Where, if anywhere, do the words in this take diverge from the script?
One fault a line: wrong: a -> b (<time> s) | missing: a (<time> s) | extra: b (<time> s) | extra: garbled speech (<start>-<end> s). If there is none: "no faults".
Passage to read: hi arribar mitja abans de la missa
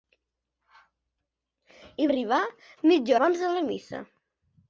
no faults